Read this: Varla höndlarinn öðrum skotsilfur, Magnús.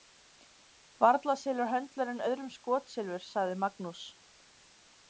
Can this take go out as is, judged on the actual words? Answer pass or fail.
fail